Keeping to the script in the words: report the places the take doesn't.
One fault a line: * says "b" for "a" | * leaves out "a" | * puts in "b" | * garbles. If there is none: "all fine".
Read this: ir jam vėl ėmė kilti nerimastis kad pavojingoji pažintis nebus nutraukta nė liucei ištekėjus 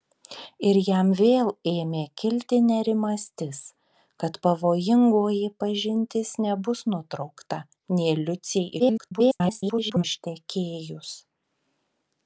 * garbles